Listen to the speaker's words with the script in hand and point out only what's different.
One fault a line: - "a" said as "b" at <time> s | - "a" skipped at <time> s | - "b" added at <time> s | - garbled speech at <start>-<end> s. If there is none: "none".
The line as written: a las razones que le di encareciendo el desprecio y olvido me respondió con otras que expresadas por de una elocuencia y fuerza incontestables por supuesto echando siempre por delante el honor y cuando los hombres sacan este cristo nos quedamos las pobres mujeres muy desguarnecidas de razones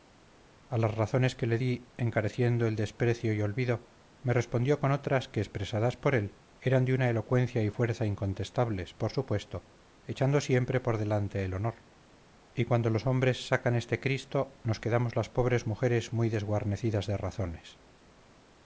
- "él eran" added at 6.1 s